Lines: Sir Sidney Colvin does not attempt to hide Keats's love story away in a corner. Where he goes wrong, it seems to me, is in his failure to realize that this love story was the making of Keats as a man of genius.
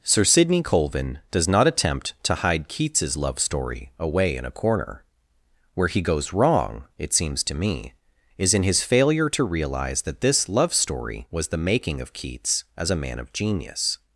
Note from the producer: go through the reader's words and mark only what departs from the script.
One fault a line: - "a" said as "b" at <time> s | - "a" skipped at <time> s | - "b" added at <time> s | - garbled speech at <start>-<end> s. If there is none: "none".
none